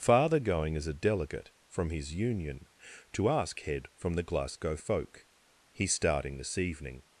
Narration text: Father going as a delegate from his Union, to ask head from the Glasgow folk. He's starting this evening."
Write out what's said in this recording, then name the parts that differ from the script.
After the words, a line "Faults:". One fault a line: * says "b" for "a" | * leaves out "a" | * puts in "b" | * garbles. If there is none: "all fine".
Father going as a delegate from his Union, to ask head from the Glasgow folk. He's starting this evening."
Faults:
all fine